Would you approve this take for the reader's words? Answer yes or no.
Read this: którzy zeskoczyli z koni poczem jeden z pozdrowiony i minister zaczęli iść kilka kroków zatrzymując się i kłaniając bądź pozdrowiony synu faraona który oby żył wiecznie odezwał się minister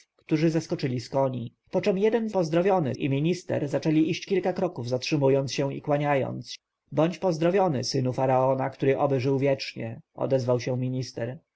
yes